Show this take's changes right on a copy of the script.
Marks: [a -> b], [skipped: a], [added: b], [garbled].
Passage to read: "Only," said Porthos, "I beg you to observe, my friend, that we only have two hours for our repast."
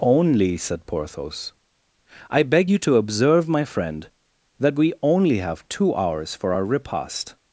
"Only," said Porthos, "I beg you to observe, my friend, that we only have two hours for our repast."